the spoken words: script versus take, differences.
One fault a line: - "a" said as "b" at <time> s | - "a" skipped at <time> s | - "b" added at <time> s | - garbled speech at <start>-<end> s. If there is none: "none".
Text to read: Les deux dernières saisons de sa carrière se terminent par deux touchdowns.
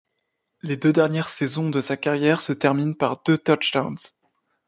none